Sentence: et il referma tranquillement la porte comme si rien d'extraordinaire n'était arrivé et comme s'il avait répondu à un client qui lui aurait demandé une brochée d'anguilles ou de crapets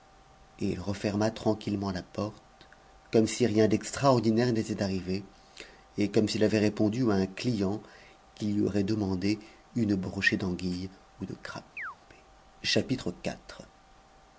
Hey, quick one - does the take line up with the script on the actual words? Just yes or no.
yes